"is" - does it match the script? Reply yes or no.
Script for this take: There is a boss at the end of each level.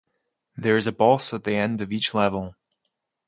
yes